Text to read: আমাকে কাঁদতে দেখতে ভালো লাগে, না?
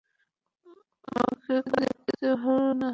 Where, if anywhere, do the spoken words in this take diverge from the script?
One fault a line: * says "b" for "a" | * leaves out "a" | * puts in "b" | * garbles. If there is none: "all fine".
* leaves out "কাঁদতে"
* leaves out "লাগে"